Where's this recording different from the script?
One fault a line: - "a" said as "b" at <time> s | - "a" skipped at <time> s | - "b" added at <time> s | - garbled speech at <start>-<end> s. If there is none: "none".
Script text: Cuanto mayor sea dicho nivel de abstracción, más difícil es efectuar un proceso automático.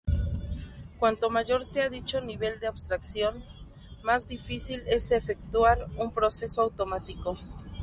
none